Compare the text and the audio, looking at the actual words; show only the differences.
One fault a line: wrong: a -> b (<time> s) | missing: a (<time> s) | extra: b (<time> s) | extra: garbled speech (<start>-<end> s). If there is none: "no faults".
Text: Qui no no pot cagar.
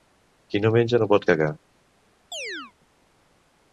extra: menja (0.8 s)